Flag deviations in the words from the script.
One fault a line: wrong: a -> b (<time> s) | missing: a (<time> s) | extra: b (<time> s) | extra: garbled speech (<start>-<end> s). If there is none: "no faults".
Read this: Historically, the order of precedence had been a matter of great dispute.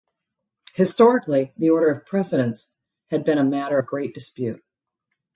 no faults